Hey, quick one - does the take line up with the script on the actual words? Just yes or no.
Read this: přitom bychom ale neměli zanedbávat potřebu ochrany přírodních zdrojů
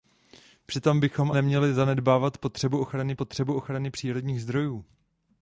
no